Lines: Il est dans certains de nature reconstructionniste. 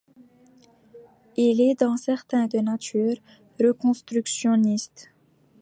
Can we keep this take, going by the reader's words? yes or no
yes